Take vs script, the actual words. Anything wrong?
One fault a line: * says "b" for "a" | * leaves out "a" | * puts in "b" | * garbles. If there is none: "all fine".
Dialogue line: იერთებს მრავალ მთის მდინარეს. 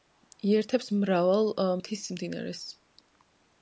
all fine